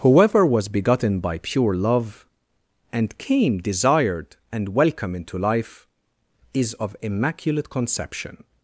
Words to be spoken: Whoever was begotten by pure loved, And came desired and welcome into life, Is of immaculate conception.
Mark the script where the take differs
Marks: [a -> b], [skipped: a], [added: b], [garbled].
Whoever was begotten by pure [loved, -> love] And came desired and welcome into life, Is of immaculate conception.